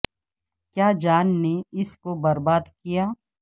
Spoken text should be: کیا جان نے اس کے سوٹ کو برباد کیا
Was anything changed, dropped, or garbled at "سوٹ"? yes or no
yes